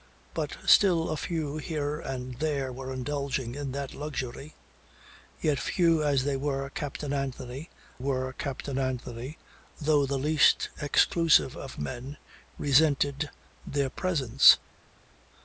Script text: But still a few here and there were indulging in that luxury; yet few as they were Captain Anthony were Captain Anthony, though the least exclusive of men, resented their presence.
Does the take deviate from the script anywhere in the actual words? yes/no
no